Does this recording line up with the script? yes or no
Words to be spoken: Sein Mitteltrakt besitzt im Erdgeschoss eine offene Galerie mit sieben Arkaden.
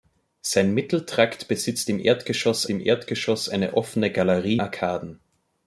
no